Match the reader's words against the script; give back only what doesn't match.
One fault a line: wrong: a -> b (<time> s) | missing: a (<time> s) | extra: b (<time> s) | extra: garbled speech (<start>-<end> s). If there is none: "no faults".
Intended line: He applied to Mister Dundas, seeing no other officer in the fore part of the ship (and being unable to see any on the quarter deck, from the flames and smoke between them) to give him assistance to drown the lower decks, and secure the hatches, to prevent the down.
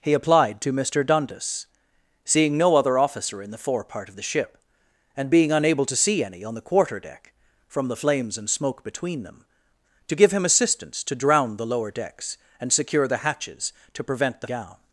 no faults